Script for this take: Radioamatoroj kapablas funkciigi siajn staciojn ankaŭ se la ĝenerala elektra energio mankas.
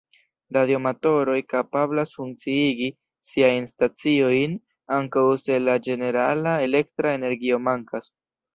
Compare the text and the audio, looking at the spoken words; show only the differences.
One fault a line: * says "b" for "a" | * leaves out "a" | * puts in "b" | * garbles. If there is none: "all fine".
all fine